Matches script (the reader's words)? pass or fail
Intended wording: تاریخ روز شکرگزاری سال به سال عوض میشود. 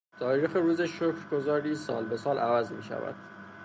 pass